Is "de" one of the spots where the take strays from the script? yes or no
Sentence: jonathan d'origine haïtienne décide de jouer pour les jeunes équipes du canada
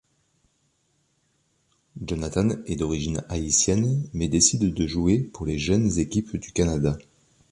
no